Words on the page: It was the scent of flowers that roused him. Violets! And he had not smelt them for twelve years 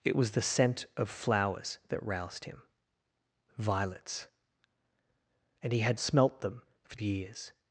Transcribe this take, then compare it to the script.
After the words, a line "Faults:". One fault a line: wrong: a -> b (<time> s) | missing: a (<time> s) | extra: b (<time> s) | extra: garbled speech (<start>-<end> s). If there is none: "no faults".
It was the scent of flowers that roused him. Violets! And he had smelt them for years
Faults:
missing: not (6.0 s)
missing: twelve (7.0 s)